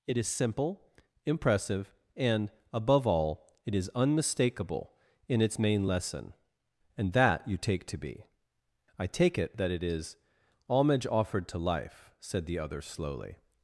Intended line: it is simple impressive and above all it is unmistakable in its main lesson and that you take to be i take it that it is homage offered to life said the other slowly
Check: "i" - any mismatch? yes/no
no